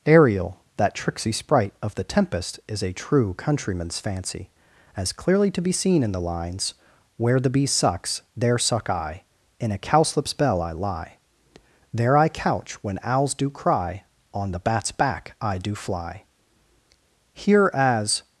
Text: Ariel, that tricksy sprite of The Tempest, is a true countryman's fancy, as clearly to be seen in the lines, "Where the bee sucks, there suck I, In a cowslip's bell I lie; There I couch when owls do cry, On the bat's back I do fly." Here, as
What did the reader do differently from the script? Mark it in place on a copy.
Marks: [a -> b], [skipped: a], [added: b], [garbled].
Ariel, that tricksy sprite of The Tempest, is a true countryman's fancy, as clearly to be seen in the lines, "Where the bee sucks, there suck I, In a cowslip's bell I lie; There I couch when owls do cry, On the bat's back I do fly." Here, as